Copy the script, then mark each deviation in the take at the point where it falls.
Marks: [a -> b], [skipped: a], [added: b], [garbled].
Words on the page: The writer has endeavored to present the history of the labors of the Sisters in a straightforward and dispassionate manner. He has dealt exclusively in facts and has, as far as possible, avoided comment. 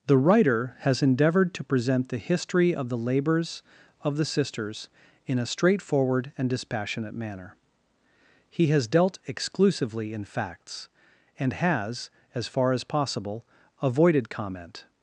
The writer has endeavored to present the history of the labors of the Sisters in a straightforward and dispassionate manner. He has dealt exclusively in facts and has, as far as possible, avoided comment.